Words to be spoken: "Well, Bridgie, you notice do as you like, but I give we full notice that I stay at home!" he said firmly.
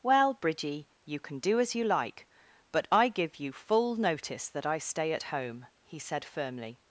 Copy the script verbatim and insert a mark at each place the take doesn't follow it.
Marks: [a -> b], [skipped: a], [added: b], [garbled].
"Well, Bridgie, you [notice -> can] do as you like, but I give [we -> you] full notice that I stay at home!" he said firmly.